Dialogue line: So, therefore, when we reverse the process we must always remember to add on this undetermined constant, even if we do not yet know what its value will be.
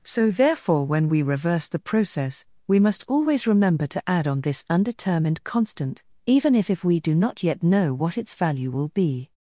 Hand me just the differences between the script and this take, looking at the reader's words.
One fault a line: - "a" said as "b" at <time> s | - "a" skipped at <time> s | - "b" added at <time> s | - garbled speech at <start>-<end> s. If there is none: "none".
- "if" added at 6.7 s